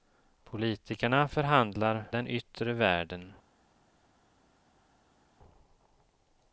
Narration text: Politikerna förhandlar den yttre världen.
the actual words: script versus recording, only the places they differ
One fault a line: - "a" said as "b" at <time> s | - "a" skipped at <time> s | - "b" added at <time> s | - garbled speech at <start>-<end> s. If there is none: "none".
none